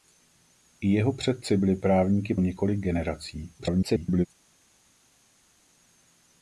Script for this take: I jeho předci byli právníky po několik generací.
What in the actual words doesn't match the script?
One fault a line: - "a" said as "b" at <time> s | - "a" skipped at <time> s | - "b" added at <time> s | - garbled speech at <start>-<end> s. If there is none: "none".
- "po" skipped at 2.4 s
- garbled speech at 3.6-4.3 s